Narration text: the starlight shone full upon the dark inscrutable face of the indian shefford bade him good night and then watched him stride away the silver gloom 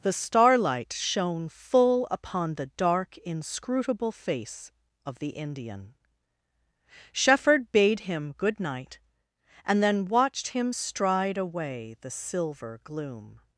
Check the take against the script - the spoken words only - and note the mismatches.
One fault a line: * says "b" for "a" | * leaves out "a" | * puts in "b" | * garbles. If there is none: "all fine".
all fine